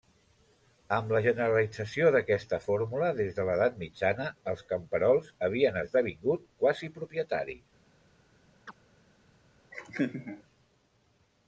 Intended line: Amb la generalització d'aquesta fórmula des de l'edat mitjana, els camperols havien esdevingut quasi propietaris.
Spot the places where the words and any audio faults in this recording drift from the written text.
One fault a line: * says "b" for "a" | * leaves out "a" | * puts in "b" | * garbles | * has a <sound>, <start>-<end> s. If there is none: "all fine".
* has a chirp, 8.7-8.8 s
* has a laugh, 9.7-10.4 s